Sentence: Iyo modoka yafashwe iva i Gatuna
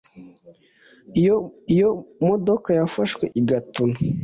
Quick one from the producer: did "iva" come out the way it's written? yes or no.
no